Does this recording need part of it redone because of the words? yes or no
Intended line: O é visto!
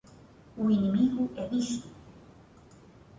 yes